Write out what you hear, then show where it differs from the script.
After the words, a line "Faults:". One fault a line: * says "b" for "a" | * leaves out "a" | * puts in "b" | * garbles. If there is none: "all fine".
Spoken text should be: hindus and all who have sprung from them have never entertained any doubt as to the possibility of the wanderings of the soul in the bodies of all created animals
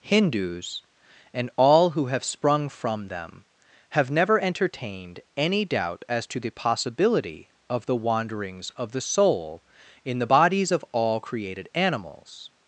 hindus and all who have sprung from them have never entertained any doubt as to the possibility of the wanderings of the soul in the bodies of all created animals
Faults:
all fine